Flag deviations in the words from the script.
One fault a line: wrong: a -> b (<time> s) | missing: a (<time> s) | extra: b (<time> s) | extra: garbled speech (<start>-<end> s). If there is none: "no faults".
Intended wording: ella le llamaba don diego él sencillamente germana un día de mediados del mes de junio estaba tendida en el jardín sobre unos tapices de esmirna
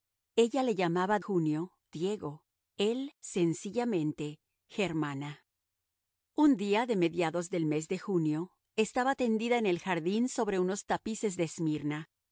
wrong: don -> junio (1.2 s)